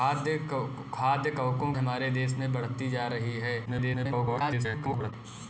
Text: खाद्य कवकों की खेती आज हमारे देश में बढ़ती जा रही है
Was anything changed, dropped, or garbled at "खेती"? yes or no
yes